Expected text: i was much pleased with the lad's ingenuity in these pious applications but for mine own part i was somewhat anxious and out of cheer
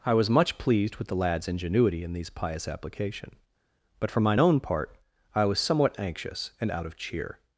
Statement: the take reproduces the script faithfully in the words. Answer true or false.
false